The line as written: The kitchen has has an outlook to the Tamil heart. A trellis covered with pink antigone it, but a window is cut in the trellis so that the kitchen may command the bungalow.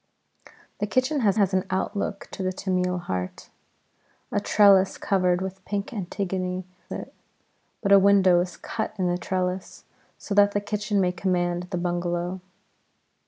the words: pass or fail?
pass